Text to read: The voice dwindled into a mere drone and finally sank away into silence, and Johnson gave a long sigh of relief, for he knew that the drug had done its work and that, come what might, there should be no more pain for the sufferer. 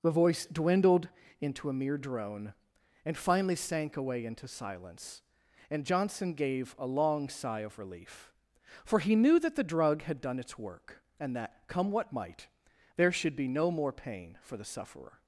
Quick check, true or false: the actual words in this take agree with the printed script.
true